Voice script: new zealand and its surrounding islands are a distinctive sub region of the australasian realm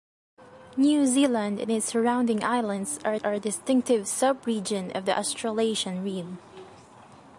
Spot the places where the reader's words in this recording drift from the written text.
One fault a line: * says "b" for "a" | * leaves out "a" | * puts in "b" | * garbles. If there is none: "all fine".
* puts in "are"